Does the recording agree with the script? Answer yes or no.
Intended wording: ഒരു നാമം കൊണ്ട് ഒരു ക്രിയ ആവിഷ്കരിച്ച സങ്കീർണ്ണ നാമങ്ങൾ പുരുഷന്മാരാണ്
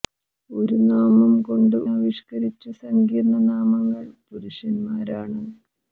no